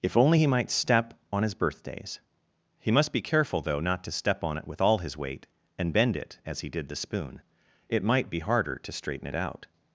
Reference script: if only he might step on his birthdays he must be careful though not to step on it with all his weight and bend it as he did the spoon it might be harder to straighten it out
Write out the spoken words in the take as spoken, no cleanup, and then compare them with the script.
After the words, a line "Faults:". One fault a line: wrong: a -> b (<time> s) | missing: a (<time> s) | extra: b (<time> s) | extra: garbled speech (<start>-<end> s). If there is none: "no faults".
if only he might step on his birthdays he must be careful though not to step on it with all his weight and bend it as he did the spoon it might be harder to straighten it out
Faults:
no faults